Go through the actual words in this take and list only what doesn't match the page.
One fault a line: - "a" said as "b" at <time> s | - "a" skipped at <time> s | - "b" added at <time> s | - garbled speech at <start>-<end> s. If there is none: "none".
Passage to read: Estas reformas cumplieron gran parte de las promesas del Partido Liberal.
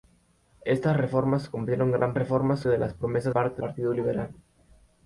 - "parte" said as "reformas" at 2.1 s
- "del" said as "parte" at 3.3 s